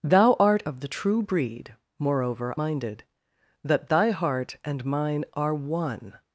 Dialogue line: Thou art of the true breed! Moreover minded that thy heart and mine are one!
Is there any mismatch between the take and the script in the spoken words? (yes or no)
no